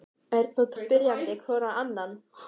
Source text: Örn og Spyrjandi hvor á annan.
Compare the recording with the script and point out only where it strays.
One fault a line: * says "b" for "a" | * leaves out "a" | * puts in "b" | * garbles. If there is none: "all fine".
all fine